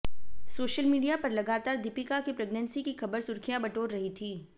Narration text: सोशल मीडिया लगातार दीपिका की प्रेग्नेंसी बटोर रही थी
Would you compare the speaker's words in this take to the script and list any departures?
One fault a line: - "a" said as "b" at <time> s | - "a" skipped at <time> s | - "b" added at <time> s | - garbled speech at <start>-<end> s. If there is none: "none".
- "पर" added at 1.2 s
- "की खबर सुर्खियां" added at 2.8 s